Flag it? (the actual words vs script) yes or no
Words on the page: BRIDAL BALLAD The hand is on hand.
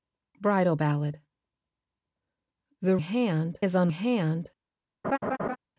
no